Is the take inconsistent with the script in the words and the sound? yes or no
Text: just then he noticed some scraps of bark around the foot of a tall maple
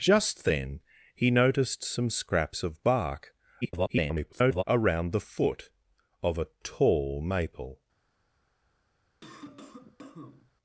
yes